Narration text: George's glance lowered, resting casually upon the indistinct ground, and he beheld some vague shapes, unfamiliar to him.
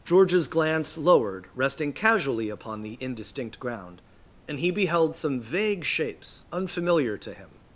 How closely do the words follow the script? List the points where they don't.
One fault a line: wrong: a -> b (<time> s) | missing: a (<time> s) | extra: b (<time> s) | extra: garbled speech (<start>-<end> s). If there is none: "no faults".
no faults